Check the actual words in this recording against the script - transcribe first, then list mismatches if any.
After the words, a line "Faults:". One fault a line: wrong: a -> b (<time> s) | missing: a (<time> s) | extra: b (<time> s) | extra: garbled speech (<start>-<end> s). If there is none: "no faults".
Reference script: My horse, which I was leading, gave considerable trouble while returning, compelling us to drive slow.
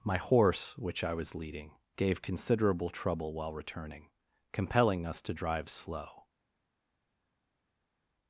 My horse, which I was leading, gave considerable trouble while returning, compelling us to drive slow.
Faults:
no faults